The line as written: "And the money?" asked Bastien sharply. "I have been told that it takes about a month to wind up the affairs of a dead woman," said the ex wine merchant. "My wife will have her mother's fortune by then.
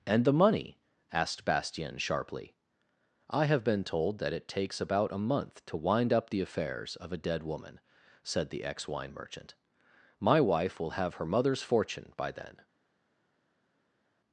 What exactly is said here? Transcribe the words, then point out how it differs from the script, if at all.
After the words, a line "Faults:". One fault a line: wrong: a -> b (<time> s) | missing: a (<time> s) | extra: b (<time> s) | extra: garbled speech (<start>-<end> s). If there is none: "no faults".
"And the money?" asked Bastien sharply. "I have been told that it takes about a month to wind up the affairs of a dead woman," said the ex wine merchant. "My wife will have her mother's fortune by then.
Faults:
no faults